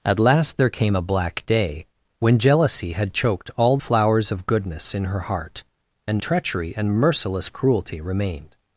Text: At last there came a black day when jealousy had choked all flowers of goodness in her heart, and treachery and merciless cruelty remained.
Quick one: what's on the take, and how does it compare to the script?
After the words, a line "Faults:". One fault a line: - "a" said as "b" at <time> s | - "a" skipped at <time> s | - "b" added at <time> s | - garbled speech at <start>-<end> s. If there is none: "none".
At last there came a black day when jealousy had choked all flowers of goodness in her heart, and treachery and merciless cruelty remained.
Faults:
none